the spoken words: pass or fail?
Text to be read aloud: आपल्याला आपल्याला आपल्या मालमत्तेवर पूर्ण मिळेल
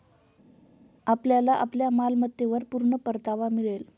fail